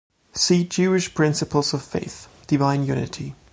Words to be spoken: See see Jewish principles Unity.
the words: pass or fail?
fail